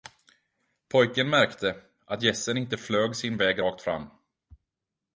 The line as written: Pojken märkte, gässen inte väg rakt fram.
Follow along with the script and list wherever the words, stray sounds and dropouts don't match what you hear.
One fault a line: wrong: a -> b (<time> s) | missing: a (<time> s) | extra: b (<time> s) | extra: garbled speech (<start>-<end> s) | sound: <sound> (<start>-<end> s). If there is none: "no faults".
extra: att (2.0 s)
extra: flög sin (2.8 s)